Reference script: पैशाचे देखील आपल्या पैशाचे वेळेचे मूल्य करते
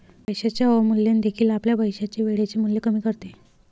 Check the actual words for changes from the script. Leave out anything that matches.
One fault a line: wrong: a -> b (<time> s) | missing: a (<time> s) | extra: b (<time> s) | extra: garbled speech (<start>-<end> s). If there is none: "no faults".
extra: अवमूल्यन (0.7 s)
extra: कमी (2.8 s)